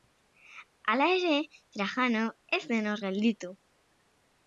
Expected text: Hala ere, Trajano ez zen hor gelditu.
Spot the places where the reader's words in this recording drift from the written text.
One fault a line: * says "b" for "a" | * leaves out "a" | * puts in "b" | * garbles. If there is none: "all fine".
all fine